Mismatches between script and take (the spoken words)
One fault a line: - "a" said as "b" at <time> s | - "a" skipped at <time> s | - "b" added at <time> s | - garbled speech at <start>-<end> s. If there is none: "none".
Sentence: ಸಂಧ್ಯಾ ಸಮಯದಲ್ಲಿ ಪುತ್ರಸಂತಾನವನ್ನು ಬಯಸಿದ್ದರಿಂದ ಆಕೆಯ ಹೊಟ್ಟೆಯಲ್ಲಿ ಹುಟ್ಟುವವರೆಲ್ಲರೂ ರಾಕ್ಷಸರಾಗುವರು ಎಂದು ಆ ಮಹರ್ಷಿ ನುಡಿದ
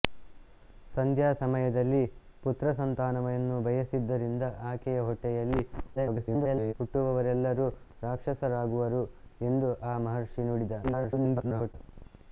- garbled speech at 6.0-6.7 s
- garbled speech at 10.8-11.7 s